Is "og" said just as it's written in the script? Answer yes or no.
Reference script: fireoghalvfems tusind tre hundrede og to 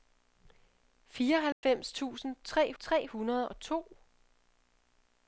yes